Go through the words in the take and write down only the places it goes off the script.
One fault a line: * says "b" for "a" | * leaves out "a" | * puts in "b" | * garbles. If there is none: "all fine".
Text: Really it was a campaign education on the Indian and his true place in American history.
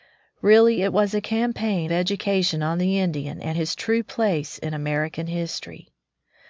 all fine